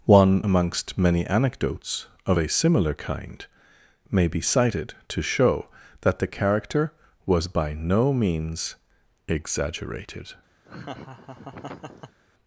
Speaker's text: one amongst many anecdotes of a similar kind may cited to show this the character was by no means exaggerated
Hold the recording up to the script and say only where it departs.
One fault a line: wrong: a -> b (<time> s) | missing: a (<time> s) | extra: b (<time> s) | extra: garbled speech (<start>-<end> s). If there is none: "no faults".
extra: be (4.3 s)
wrong: this -> that (6.0 s)